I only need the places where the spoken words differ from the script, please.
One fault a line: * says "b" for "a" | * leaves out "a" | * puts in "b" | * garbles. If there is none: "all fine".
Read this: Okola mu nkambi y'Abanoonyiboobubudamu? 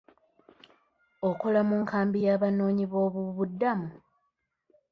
all fine